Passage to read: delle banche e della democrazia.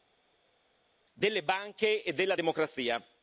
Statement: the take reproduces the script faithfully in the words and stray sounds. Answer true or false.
true